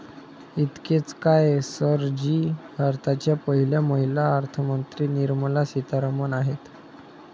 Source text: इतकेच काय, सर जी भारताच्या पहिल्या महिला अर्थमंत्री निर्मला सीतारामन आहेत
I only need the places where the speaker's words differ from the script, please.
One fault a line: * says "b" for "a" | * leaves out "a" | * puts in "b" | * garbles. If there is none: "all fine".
all fine